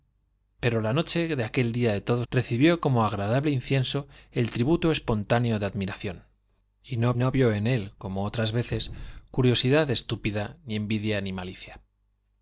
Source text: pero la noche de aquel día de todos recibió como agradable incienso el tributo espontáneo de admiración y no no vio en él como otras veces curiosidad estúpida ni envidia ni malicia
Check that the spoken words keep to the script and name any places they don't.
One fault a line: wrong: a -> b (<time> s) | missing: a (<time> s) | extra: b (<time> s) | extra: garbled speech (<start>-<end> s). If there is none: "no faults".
no faults